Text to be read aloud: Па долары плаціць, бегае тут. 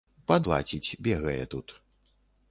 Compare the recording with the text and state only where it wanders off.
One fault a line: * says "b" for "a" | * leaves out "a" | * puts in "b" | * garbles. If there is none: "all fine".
* leaves out "долары"